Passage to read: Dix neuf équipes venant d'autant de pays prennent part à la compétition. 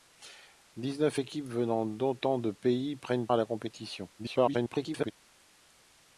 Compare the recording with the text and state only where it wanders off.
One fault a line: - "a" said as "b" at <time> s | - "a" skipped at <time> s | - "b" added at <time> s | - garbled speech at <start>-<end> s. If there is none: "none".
- "part" skipped at 3.3 s
- garbled speech at 4.2-5.1 s